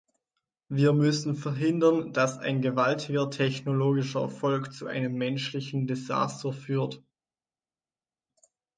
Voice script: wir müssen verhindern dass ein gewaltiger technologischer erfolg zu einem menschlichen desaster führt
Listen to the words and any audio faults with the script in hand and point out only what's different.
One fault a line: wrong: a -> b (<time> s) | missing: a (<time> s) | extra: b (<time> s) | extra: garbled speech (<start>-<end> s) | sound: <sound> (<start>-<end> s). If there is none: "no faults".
no faults